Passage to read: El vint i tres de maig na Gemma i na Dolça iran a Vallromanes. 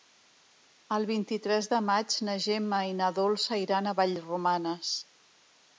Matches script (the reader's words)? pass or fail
pass